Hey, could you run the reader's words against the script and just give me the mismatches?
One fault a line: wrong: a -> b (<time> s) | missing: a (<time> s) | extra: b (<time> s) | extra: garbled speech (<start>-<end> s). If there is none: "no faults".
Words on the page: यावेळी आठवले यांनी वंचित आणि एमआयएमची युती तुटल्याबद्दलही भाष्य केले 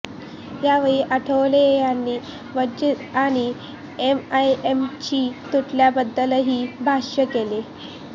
missing: युती (5.2 s)